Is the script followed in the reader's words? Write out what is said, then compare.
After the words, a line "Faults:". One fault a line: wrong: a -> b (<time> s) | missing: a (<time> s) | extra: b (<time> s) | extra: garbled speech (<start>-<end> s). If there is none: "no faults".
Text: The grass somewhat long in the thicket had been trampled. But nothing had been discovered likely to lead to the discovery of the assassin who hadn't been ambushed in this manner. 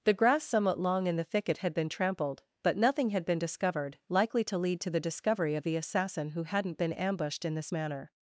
The grass somewhat long in the thicket had been trampled. But nothing had been discovered likely to lead to the discovery of the assassin who hadn't been ambushed in this manner.
Faults:
no faults